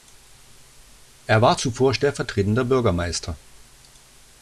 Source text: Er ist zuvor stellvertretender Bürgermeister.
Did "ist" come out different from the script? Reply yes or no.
yes